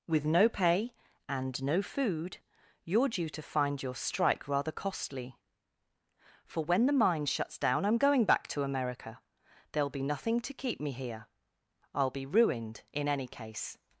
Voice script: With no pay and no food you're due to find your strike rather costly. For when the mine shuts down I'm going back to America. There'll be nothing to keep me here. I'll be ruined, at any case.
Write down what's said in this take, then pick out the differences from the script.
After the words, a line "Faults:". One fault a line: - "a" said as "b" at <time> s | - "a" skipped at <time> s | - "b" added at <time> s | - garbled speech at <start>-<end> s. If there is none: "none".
With no pay and no food you're due to find your strike rather costly. For when the mine shuts down I'm going back to America. There'll be nothing to keep me here. I'll be ruined, in any case.
Faults:
- "at" said as "in" at 12.9 s